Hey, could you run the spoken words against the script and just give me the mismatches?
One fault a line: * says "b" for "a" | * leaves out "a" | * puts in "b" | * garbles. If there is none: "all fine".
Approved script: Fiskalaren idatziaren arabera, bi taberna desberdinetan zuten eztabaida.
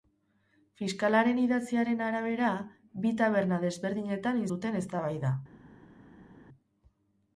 all fine